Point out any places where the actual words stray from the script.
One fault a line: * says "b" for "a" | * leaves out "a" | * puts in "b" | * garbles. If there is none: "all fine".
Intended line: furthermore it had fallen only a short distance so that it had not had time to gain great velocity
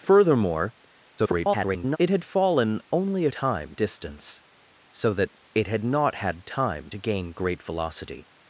* garbles
* says "time" for "short"